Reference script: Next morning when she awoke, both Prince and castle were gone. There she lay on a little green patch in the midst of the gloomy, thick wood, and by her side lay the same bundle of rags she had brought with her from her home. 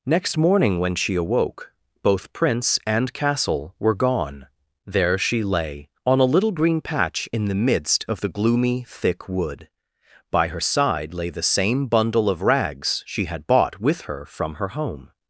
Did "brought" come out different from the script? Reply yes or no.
yes